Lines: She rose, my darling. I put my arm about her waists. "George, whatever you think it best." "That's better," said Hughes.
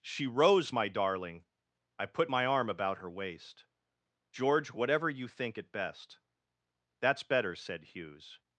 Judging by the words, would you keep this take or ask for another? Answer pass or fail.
fail